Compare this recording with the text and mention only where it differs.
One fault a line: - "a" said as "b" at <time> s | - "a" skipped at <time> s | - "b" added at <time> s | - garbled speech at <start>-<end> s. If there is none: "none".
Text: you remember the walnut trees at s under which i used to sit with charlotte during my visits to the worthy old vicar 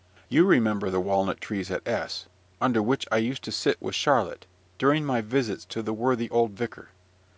none